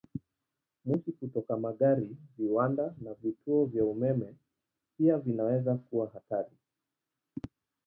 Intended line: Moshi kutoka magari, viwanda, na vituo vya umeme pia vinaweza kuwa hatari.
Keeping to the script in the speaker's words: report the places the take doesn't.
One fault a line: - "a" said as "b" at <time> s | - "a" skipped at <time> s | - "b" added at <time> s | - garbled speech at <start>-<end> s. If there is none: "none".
none